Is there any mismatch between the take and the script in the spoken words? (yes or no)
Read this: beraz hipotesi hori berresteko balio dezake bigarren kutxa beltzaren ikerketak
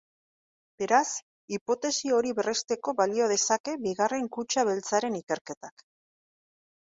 no